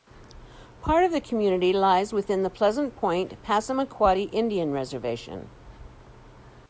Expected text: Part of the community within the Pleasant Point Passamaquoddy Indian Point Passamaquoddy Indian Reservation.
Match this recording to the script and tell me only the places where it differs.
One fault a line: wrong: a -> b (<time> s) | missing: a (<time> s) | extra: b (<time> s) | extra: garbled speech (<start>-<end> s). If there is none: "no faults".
extra: lies (1.7 s)
missing: Point Passamaquoddy Indian (4.7 s)